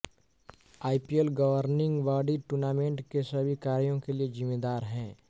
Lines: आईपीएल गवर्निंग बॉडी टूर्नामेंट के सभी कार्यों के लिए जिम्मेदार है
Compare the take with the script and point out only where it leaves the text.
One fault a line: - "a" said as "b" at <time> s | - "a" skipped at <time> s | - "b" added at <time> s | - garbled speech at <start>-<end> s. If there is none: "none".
none